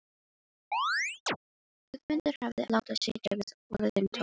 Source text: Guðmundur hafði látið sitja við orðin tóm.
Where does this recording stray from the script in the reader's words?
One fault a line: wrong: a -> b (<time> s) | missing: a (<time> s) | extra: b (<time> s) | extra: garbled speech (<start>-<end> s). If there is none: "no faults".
no faults